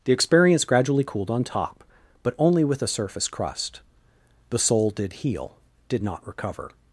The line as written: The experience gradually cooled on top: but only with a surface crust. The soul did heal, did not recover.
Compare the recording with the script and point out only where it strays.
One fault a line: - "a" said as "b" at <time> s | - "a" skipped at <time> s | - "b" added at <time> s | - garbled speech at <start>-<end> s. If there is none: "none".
none